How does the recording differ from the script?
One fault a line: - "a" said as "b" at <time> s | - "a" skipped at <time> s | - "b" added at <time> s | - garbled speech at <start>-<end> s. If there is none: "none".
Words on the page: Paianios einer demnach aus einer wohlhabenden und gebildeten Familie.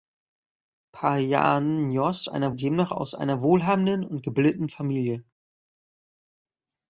none